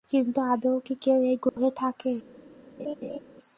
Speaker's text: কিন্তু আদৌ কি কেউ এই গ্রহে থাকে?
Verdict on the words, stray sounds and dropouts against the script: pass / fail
fail